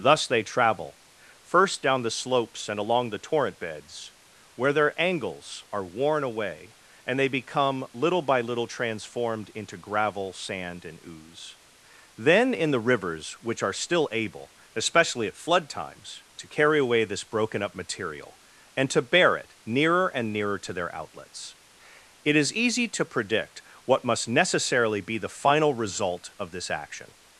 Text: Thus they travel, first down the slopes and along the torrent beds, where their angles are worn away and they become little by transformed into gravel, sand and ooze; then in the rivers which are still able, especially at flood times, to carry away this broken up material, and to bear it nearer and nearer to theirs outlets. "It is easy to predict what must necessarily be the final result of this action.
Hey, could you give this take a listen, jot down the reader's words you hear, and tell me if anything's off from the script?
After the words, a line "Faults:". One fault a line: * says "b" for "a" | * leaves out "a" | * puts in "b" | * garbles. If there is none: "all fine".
Thus they travel, first down the slopes and along the torrent beds, where their angles are worn away and they become little by little transformed into gravel, sand and ooze; then in the rivers which are still able, especially at flood times, to carry away this broken up material, and to bear it nearer and nearer to their outlets. "It is easy to predict what must necessarily be the final result of this action.
Faults:
* puts in "little"
* says "their" for "theirs"